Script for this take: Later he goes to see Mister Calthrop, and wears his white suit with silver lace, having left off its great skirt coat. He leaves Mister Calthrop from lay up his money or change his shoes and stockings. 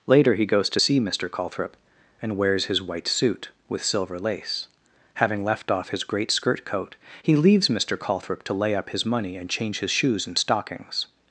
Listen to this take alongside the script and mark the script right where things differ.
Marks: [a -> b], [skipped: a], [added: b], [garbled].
Later he goes to see Mister Calthrop, and wears his white suit with silver lace, having left off [its -> his] great skirt coat. He leaves Mister Calthrop [from -> to] lay up his money [or -> and] change his shoes and stockings.